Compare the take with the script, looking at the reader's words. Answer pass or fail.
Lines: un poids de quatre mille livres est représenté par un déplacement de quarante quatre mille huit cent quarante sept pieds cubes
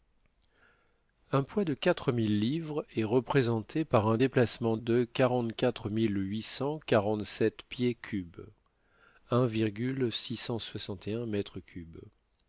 pass